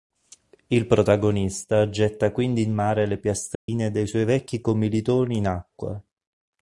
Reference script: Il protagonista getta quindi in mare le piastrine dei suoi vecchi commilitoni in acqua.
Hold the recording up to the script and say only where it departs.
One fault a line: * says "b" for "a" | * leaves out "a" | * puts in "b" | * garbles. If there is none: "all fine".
all fine